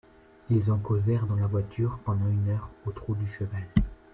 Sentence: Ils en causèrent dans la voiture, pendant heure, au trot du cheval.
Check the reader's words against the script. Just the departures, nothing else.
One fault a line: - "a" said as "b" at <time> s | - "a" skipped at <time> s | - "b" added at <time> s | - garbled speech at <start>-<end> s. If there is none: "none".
- "une" added at 2.3 s